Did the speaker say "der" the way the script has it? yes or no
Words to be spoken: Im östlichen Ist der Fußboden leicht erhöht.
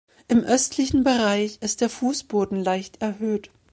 yes